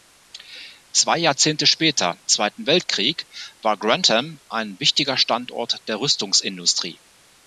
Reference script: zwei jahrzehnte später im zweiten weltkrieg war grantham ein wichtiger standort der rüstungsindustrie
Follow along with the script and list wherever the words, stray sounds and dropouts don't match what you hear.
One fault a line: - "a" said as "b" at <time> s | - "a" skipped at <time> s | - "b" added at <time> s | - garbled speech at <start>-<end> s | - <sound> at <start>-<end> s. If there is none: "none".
- "im" skipped at 2.2 s